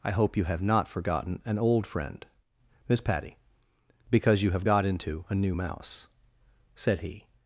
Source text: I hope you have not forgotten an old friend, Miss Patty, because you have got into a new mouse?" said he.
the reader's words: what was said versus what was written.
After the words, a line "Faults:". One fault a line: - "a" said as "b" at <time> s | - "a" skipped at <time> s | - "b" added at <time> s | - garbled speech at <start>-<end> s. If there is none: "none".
I hope you have not forgotten an old friend, Miss Patty, because you have got into a new mouse?" said he.
Faults:
none